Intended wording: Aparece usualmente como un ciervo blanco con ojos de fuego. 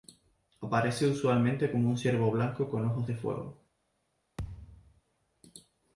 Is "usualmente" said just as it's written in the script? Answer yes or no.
yes